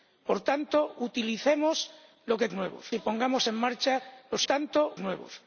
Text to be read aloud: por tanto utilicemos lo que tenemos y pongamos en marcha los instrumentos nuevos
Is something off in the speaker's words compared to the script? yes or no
yes